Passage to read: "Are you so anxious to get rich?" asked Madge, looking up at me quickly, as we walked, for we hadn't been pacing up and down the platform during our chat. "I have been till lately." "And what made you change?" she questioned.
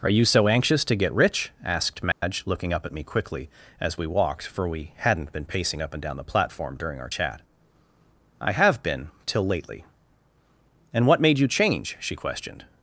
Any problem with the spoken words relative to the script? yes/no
no